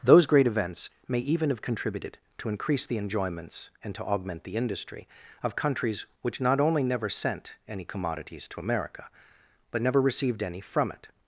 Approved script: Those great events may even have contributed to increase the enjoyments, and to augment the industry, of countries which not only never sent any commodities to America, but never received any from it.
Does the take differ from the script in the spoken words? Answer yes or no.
no